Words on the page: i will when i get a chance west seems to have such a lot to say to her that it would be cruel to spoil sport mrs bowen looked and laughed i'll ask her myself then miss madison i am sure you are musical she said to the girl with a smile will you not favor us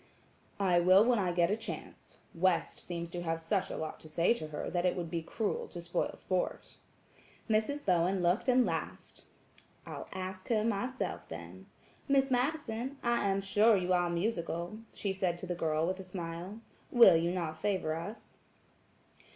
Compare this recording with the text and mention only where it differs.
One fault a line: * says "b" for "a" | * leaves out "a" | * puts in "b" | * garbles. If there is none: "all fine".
all fine